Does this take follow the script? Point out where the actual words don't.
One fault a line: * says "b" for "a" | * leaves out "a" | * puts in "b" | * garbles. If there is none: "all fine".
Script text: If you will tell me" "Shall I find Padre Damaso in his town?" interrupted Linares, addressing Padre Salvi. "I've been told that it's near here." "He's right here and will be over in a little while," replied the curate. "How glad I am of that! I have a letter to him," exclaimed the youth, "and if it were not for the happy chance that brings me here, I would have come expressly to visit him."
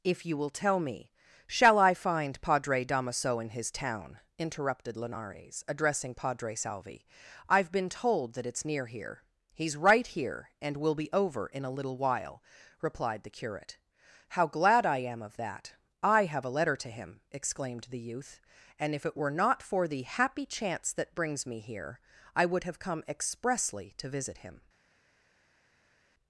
all fine